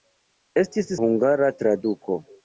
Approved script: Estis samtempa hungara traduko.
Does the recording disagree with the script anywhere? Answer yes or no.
yes